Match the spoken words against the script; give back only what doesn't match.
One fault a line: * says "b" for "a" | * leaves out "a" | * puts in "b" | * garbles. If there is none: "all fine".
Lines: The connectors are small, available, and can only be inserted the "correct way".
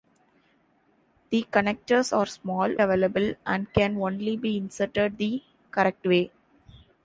all fine